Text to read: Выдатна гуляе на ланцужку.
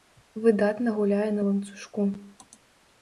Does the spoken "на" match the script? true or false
true